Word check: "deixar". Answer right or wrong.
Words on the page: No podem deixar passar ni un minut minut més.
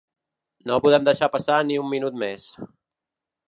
right